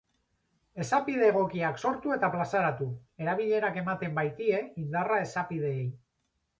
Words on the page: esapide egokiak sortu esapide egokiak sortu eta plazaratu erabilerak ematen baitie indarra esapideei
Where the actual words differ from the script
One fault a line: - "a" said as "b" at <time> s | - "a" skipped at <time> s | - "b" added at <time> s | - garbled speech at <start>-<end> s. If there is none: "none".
- "esapide egokiak sortu" skipped at 2.1 s